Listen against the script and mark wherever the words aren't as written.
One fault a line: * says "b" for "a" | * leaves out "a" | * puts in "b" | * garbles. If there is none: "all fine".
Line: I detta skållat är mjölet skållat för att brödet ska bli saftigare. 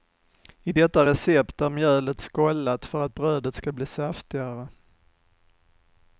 * says "recept" for "skållat"